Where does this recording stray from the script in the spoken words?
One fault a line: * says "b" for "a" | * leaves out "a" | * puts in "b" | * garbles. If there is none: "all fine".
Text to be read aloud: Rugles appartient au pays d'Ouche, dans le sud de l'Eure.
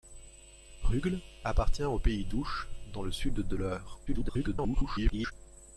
* garbles